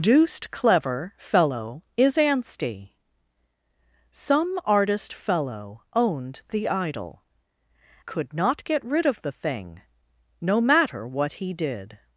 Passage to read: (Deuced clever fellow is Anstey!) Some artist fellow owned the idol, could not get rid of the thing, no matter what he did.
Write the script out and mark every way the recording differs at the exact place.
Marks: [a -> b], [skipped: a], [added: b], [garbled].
(Deuced clever fellow is Anstey!) Some artist fellow owned the idol, could not get rid of the thing, no matter what he did.